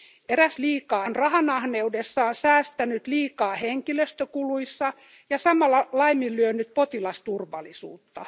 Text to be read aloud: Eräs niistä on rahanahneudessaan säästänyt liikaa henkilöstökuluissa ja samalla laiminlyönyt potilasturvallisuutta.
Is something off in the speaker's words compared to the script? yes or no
yes